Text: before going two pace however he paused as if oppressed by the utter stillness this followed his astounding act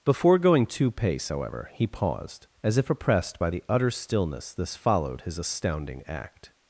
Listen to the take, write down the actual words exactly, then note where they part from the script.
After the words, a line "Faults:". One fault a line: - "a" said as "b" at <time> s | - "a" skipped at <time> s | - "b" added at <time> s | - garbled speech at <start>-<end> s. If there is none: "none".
before going two pace however he paused as if oppressed by the utter stillness this followed his astounding act
Faults:
none